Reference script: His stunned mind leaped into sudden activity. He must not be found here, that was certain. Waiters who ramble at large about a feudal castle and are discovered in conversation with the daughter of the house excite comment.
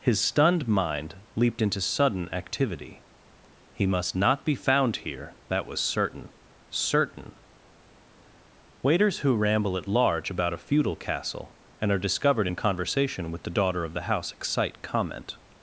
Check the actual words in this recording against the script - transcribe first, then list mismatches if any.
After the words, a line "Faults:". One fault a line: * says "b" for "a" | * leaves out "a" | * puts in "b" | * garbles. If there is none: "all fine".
His stunned mind leaped into sudden activity. He must not be found here, that was certain certain. Waiters who ramble at large about a feudal castle and are discovered in conversation with the daughter of the house excite comment.
Faults:
* puts in "certain"